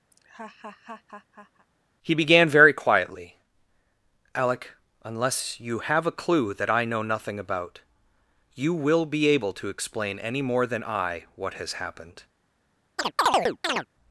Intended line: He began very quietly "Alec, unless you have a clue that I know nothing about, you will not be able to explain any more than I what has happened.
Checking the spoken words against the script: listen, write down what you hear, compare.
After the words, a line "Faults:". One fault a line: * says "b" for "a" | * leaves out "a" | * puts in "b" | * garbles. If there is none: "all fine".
He began very quietly "Alec, unless you have a clue that I know nothing about, you will be able to explain any more than I what has happened.
Faults:
* leaves out "not"